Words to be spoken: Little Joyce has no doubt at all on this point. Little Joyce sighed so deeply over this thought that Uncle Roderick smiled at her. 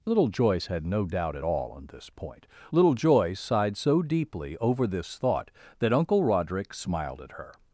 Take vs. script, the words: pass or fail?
fail